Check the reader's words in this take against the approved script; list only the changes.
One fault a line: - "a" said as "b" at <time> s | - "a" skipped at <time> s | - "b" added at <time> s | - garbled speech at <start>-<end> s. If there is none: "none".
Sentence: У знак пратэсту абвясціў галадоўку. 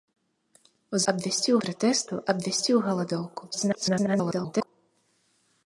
- "знак" said as "абвясціў" at 1.1 s
- garbled speech at 3.5-4.7 s